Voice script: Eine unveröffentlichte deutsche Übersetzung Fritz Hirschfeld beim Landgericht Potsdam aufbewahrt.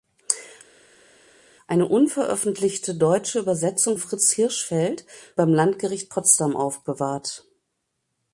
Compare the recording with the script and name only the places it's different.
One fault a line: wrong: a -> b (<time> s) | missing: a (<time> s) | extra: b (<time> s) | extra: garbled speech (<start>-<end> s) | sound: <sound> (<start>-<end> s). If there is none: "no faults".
no faults